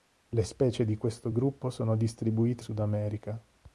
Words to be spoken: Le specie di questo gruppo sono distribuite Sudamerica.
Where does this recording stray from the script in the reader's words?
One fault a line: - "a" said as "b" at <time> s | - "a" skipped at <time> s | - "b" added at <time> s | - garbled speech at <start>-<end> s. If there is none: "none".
none